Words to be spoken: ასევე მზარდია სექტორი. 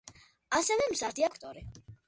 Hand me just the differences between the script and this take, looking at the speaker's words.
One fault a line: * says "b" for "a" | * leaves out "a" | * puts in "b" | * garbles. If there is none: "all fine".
all fine